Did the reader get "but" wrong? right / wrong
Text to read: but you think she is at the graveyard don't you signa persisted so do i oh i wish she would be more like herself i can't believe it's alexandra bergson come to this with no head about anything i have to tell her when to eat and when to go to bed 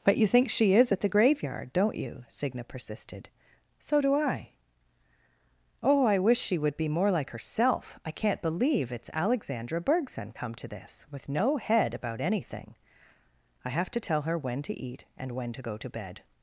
right